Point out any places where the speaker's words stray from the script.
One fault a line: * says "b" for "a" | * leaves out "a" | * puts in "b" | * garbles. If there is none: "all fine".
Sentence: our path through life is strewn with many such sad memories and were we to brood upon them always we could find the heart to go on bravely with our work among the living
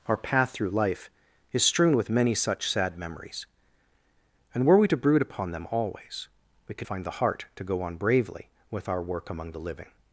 all fine